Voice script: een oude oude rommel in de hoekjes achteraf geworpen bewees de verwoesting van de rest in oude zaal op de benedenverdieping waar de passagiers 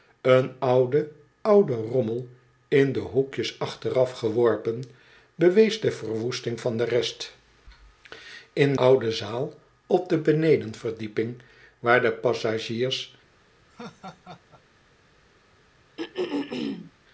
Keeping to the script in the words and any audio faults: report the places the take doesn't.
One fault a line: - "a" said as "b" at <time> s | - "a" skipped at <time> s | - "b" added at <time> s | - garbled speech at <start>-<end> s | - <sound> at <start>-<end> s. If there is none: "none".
- laugh at 13.7-14.6 s
- throat clearing at 16.0-16.9 s